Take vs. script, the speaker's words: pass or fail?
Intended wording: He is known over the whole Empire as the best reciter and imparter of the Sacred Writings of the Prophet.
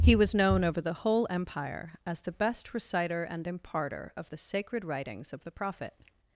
fail